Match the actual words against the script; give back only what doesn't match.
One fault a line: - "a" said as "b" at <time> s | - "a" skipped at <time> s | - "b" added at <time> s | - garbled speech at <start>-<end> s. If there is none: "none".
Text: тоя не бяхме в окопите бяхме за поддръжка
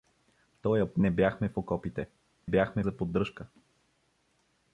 none